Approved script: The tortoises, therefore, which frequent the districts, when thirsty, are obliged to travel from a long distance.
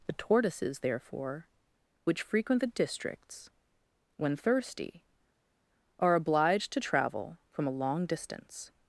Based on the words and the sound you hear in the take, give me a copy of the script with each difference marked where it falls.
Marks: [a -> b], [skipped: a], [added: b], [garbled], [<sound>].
The tortoises, therefore, which frequent the districts, when thirsty, are obliged to travel from a long distance.